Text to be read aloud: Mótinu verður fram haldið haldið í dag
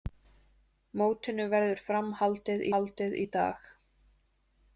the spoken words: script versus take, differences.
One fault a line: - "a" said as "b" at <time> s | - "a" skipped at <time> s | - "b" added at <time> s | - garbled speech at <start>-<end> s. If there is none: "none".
none